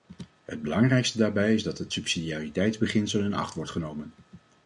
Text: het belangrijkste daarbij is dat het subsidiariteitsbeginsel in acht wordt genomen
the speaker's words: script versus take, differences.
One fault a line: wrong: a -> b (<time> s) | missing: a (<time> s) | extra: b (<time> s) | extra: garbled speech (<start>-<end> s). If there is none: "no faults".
no faults